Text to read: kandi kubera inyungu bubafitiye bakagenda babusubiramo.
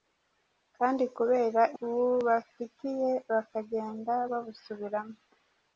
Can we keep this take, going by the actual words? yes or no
no